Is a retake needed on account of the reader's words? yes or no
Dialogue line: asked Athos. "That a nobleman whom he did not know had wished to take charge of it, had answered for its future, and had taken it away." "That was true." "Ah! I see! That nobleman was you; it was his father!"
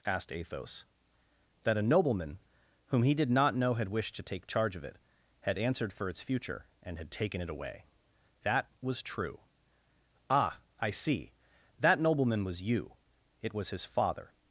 no